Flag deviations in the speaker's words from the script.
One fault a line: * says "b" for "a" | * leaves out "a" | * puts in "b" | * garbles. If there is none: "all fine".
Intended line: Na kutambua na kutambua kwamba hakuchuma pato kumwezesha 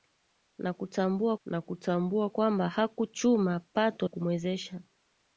all fine